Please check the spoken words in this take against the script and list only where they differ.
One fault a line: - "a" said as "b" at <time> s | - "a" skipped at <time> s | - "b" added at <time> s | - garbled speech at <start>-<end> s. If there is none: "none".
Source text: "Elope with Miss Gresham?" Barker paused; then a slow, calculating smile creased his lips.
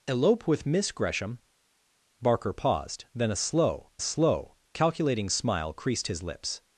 - "slow" added at 4.0 s